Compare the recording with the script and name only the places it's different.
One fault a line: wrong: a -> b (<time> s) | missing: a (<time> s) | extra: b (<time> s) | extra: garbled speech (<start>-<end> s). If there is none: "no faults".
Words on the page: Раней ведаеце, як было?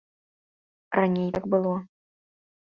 missing: ведаеце (1.3 s)